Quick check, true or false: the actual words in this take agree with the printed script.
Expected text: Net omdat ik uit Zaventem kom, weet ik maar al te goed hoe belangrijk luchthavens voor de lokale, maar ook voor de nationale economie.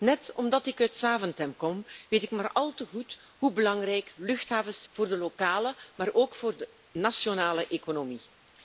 true